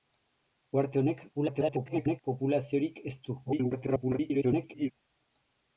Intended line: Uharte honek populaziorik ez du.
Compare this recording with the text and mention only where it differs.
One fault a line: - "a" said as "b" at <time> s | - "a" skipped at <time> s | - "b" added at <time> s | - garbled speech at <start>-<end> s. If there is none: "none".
- garbled speech at 1.3-2.2 s
- garbled speech at 3.4-4.9 s